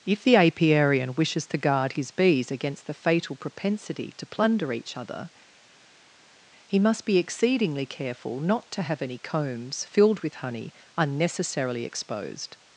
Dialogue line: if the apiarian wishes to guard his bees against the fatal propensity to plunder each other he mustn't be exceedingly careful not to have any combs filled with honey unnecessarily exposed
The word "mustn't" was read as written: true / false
false